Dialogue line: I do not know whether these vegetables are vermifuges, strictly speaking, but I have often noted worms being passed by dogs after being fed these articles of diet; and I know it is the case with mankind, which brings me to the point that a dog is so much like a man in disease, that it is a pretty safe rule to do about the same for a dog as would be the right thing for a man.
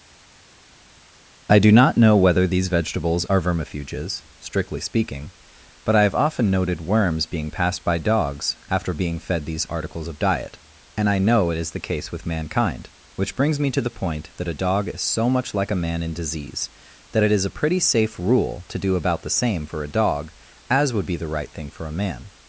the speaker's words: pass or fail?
pass